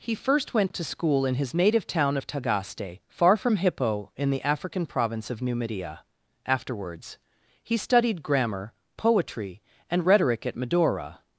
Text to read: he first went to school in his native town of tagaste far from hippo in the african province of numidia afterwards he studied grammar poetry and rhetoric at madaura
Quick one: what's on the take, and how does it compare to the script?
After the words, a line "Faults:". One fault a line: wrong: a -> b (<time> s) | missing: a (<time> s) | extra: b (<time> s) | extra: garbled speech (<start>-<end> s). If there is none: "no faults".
he first went to school in his native town of tagaste far from hippo in the african province of numidia afterwards he studied grammar poetry and rhetoric at madaura
Faults:
no faults